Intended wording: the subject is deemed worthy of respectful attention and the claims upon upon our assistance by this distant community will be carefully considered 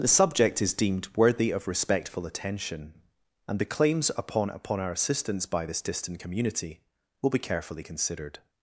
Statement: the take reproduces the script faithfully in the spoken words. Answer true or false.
true